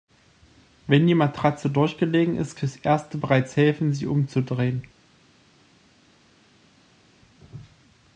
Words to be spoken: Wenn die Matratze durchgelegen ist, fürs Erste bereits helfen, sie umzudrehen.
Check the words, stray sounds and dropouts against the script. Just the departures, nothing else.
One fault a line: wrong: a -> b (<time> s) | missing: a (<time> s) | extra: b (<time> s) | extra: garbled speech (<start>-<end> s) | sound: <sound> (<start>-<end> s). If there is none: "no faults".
no faults